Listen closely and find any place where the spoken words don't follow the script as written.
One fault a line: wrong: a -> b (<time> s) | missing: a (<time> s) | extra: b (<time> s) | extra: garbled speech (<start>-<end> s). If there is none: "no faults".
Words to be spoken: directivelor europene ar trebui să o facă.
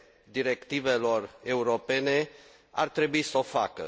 no faults